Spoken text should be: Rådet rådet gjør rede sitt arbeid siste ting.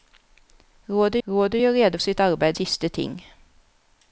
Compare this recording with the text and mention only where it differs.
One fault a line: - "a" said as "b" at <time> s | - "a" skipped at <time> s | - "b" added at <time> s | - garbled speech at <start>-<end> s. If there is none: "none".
none